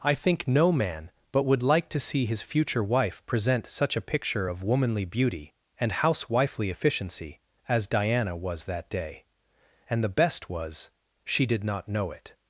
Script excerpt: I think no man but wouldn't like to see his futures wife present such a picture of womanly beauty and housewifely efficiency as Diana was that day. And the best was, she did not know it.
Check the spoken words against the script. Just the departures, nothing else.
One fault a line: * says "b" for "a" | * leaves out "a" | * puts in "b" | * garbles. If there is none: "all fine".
* says "would" for "wouldn't"
* says "future" for "futures"